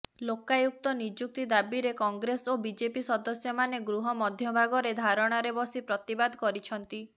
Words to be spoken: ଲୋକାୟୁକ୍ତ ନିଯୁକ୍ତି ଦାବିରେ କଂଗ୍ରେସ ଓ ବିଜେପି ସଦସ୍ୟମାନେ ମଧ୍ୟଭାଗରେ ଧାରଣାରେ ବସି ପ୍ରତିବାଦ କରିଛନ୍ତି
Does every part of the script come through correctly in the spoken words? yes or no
no